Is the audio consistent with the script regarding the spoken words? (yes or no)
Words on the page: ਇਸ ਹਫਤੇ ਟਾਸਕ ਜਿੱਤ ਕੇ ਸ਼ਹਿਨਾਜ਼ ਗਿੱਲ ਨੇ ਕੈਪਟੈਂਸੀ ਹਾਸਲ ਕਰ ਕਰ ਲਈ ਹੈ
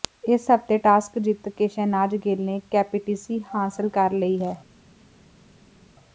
no